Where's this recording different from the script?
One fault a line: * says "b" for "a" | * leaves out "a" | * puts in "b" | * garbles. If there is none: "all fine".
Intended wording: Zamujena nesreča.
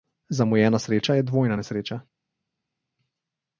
* puts in "sreča je dvojna"